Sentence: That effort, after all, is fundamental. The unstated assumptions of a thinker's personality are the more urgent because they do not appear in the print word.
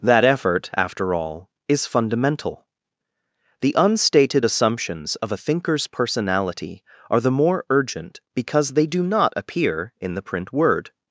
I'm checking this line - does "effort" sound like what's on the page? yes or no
yes